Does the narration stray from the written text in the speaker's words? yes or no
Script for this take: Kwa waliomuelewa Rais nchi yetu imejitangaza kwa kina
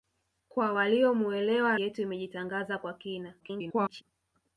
yes